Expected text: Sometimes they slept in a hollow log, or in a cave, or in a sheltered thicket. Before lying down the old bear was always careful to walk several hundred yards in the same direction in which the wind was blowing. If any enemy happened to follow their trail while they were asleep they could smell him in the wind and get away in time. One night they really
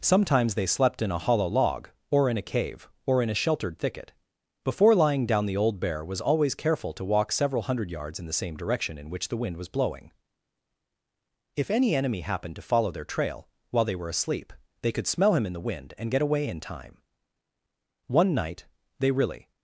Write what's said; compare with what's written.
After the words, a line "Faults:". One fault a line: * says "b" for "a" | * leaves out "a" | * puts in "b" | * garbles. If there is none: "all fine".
Sometimes they slept in a hollow log, or in a cave, or in a sheltered thicket. Before lying down the old bear was always careful to walk several hundred yards in the same direction in which the wind was blowing. If any enemy happened to follow their trail while they were asleep they could smell him in the wind and get away in time. One night they really
Faults:
all fine